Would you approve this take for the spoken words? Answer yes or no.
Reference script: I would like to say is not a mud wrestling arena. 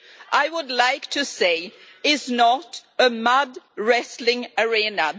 yes